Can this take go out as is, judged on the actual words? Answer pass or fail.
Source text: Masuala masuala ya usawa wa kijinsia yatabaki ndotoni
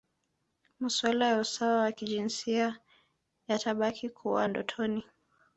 fail